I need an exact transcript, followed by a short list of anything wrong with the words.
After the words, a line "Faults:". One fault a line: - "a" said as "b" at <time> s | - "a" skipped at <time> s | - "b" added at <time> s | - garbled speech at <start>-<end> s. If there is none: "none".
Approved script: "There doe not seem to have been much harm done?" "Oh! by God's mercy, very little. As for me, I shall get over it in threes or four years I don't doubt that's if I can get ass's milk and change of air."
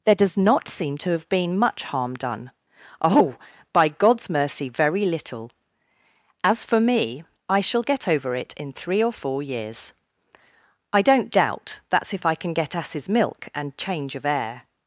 "There does not seem to have been much harm done?" "Oh! by God's mercy, very little. As for me, I shall get over it in three or four years I don't doubt that's if I can get ass's milk and change of air."
Faults:
- "doe" said as "does" at 0.1 s
- "threes" said as "three" at 8.7 s